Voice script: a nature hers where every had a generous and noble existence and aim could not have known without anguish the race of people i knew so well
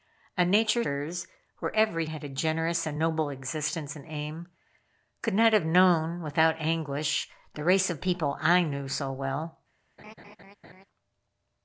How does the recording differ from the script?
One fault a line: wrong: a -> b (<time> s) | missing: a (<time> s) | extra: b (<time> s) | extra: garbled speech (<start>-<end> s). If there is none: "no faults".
no faults